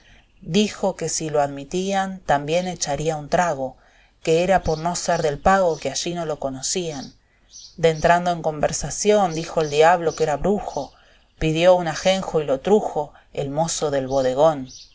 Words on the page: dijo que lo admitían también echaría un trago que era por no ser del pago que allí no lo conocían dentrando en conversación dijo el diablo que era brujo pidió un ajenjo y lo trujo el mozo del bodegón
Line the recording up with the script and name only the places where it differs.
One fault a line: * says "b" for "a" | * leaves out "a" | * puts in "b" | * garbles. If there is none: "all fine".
* puts in "si"